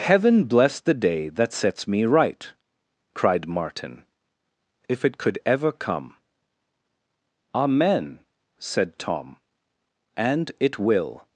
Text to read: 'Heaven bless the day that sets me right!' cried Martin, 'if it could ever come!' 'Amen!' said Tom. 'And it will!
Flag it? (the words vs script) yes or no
no